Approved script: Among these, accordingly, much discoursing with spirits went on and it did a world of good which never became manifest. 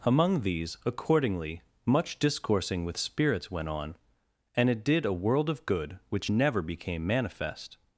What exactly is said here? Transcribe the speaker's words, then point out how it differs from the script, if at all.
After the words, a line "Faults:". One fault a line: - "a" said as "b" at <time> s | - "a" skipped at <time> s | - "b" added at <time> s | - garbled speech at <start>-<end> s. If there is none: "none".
Among these, accordingly, much discoursing with spirits went on and it did a world of good which never became manifest.
Faults:
none